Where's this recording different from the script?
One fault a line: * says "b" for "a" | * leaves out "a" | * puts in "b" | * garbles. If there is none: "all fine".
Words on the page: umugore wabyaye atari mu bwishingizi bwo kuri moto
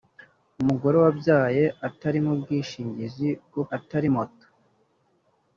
* says "atari" for "kuri"